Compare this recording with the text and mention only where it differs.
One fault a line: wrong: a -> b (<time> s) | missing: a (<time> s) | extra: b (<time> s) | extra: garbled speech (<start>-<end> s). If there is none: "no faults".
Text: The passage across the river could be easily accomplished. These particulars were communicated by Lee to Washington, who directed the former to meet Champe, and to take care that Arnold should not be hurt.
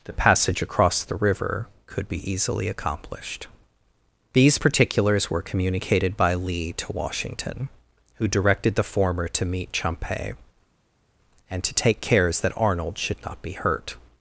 wrong: care -> cares (12.0 s)